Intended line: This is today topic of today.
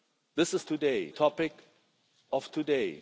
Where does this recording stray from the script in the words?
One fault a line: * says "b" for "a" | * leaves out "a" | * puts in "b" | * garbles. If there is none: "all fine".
all fine